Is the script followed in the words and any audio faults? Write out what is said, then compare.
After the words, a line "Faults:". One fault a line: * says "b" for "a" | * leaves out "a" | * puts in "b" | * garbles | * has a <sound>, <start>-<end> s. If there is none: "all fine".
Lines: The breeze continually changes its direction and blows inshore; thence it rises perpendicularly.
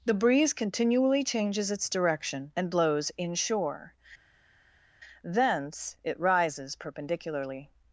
The breeze continually changes its direction and blows inshore; thence it rises perpendicularly.
Faults:
all fine